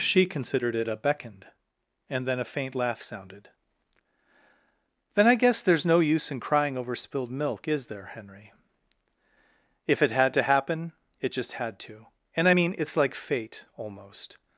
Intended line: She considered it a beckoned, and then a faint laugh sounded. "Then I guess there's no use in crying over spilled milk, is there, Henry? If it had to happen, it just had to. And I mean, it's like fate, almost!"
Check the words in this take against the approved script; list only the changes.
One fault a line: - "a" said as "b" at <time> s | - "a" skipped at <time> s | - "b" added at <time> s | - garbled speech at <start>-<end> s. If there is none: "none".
none